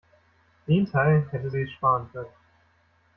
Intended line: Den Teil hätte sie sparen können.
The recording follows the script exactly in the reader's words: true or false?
false